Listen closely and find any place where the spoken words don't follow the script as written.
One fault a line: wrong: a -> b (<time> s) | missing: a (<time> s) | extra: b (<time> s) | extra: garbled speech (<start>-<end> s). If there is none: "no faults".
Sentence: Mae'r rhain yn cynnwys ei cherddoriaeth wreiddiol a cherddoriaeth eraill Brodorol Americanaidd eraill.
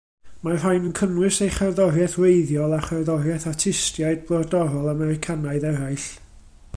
wrong: eraill -> artistiaid (3.5 s)